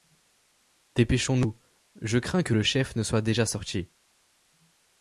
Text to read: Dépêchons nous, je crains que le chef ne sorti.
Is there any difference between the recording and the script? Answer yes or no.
yes